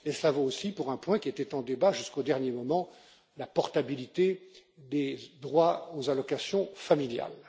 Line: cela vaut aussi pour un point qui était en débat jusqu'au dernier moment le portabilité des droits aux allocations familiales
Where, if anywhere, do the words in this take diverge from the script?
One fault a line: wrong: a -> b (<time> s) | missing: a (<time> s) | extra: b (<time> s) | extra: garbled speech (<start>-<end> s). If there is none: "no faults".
wrong: le -> la (3.4 s)